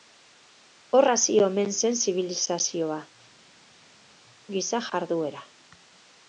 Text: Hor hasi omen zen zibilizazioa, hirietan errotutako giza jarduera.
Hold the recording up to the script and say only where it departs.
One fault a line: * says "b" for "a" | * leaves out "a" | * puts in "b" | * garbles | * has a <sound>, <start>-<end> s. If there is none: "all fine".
* leaves out "hirietan errotutako"